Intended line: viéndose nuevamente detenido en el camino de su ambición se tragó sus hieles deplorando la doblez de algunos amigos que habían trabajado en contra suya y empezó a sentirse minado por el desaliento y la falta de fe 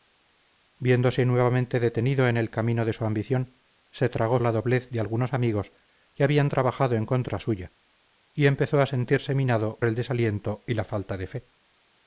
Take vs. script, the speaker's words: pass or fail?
fail